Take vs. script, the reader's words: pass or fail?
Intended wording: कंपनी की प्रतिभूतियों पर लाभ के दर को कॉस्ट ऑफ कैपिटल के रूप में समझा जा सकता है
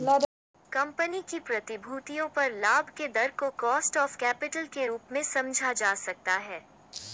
pass